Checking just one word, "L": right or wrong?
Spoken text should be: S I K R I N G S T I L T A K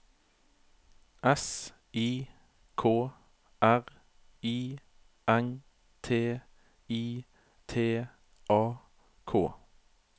wrong